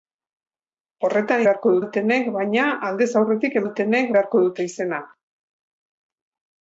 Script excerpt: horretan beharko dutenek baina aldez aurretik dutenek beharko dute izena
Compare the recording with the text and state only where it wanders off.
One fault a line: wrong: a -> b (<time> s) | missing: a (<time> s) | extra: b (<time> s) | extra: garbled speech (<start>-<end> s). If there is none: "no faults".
no faults